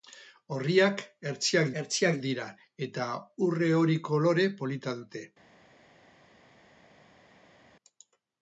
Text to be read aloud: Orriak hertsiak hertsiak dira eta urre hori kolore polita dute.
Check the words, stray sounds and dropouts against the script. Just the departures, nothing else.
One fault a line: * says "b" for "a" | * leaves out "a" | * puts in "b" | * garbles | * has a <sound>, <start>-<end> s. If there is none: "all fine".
all fine